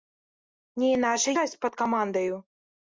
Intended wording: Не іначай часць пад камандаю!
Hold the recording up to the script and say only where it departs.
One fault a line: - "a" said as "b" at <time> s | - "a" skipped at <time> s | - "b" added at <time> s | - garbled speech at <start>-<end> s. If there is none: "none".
none